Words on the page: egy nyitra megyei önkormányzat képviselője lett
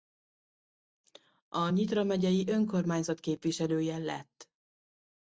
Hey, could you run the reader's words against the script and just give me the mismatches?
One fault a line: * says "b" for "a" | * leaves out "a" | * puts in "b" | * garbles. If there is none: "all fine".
* says "a" for "egy"